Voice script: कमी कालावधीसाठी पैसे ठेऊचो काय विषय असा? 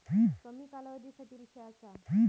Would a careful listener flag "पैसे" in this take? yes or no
yes